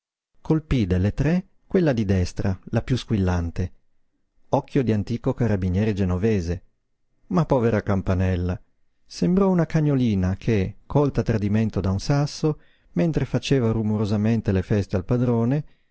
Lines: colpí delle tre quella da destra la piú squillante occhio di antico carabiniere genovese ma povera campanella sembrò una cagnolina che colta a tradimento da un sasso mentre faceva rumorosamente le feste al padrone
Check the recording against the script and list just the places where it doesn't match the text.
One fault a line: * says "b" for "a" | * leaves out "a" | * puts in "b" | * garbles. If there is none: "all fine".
* says "di" for "da"